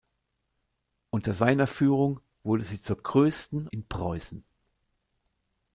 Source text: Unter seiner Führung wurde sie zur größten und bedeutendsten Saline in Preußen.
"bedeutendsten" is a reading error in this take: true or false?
true